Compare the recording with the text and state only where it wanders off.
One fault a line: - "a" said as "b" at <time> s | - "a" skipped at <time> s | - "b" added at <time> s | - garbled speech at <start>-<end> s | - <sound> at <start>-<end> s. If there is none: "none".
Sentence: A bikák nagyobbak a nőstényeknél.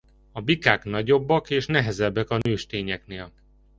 - "és nehezebbek" added at 1.5 s
- dropout at 2.4-2.5 s